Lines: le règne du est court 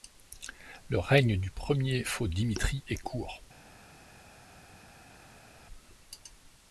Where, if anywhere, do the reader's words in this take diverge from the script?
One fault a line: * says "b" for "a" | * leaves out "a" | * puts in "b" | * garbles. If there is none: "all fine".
* puts in "premier faux dimitri"